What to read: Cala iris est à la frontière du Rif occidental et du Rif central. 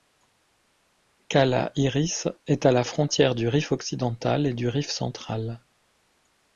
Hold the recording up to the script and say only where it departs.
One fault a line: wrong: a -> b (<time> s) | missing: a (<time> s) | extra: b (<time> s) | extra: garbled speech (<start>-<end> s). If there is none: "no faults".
no faults